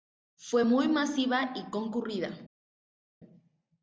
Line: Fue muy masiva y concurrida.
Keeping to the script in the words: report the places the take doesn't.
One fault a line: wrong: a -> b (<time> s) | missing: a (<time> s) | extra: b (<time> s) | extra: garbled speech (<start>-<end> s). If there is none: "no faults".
no faults